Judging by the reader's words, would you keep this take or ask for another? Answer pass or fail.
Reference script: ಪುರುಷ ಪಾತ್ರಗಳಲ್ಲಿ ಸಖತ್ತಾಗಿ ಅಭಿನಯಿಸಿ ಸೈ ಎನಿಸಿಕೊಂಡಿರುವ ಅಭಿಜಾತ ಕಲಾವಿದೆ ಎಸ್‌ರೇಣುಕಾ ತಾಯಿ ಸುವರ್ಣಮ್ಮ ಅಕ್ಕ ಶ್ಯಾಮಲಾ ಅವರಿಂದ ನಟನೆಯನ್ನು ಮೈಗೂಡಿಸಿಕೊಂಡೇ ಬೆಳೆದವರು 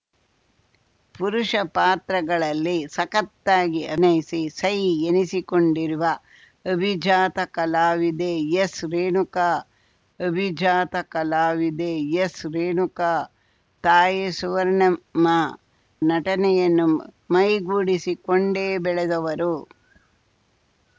fail